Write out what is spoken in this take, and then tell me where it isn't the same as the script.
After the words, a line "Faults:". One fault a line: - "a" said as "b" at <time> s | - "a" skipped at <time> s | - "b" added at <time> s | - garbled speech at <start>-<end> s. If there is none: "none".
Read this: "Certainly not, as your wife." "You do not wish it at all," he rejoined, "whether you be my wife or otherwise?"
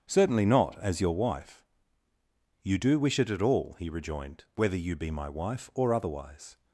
"Certainly not, as your wife." "You do wish it at all," he rejoined, "whether you be my wife or otherwise?"
Faults:
- "not" skipped at 3.0 s